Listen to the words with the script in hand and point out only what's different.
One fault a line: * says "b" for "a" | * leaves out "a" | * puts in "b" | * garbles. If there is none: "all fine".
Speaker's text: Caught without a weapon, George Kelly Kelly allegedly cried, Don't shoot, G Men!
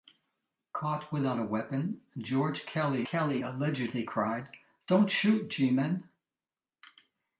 all fine